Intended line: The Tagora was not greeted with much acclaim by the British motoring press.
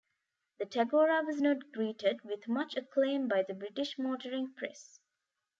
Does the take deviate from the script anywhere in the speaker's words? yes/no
no